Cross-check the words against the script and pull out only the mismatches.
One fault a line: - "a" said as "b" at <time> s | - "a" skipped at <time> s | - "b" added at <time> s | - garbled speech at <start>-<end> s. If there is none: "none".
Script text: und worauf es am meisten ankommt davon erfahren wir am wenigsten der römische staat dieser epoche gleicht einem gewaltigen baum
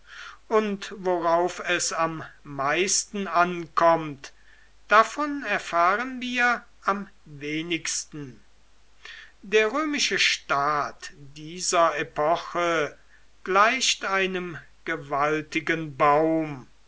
none